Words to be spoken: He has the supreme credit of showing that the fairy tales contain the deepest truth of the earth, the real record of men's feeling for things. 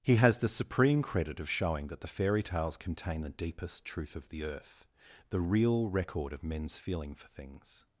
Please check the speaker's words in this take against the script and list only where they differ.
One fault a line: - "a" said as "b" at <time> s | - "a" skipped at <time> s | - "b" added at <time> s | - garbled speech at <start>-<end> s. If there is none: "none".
none